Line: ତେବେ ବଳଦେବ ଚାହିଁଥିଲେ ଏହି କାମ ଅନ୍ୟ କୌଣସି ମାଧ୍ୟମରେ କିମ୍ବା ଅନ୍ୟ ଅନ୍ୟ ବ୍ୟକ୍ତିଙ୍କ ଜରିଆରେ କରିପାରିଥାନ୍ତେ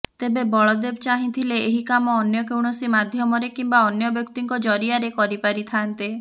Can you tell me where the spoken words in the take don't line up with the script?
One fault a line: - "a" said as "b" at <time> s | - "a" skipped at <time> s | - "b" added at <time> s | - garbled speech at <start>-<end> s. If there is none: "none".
- "ଅନ୍ୟ" skipped at 4.1 s